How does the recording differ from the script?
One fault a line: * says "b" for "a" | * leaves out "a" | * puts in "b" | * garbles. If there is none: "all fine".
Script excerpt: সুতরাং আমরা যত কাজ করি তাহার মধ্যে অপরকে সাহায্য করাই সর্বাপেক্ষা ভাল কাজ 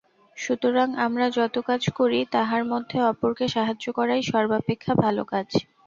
all fine